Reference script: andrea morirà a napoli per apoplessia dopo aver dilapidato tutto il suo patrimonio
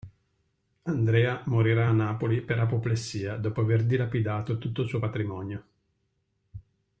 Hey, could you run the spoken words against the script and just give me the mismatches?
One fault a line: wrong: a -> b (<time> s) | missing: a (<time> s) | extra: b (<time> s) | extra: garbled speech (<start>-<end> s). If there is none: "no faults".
no faults